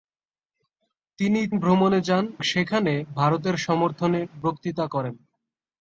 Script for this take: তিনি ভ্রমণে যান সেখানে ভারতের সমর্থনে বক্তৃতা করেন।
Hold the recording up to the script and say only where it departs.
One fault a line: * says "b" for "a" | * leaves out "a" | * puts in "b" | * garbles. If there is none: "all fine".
all fine